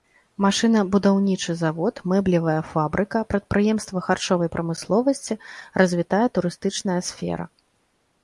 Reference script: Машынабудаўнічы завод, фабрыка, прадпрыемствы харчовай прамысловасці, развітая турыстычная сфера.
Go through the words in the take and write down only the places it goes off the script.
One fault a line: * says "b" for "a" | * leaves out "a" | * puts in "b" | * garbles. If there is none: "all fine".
* puts in "мэблевая"